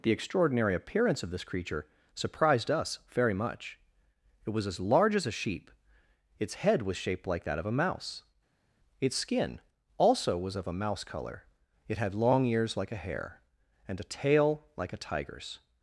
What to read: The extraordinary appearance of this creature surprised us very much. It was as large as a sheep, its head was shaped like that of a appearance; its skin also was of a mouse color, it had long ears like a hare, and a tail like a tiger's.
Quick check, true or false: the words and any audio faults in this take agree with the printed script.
false